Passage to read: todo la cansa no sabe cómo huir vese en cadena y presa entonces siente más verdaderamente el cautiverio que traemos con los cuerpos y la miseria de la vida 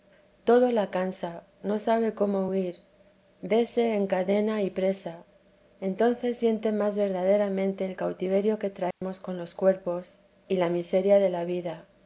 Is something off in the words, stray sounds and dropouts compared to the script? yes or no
yes